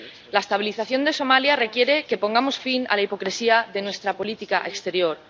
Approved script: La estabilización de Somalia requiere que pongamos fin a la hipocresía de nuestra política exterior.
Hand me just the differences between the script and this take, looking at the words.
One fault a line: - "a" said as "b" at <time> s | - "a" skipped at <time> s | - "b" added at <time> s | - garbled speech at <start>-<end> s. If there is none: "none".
none